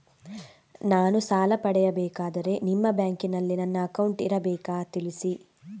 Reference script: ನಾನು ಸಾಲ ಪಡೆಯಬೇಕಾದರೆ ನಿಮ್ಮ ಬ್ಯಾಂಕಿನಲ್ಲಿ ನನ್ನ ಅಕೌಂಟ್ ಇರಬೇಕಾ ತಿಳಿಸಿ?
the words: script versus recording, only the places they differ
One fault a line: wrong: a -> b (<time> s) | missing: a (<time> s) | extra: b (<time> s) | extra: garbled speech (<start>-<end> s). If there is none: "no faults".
no faults